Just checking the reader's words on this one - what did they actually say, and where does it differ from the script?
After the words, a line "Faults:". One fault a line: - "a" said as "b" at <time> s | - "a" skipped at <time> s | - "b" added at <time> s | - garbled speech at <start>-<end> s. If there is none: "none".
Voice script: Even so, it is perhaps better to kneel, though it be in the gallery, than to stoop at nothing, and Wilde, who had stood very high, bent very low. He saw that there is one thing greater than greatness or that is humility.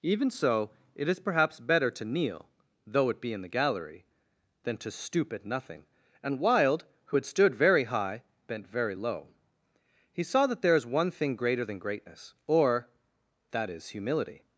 Even so, it is perhaps better to kneel, though it be in the gallery, than to stoop at nothing, and Wilde, who had stood very high, bent very low. He saw that there is one thing greater than greatness or that is humility.
Faults:
none